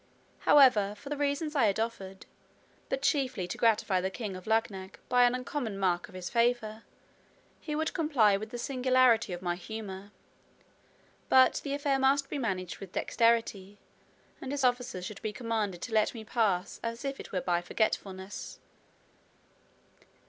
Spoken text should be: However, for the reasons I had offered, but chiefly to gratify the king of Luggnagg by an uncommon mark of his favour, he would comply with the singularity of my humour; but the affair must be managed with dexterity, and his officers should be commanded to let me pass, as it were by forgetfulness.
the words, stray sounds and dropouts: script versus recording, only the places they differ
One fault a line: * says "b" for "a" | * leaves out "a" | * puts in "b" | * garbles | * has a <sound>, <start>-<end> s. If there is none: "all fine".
all fine